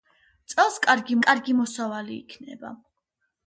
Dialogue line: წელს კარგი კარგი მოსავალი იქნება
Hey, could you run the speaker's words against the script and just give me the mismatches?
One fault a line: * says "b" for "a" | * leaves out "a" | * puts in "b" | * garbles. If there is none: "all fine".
all fine